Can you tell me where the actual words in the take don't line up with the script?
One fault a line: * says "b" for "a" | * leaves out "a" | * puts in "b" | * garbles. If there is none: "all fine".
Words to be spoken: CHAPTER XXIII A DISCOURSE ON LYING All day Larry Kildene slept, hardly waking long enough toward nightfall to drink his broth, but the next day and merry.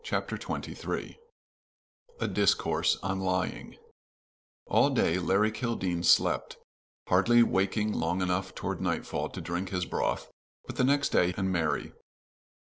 all fine